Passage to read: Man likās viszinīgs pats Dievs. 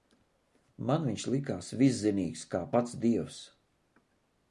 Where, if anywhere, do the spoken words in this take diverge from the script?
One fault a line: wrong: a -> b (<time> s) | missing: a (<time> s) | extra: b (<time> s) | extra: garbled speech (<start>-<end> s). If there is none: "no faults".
extra: viņš (1.1 s)
extra: kā (2.5 s)